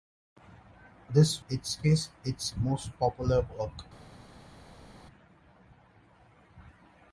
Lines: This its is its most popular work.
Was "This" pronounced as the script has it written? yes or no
yes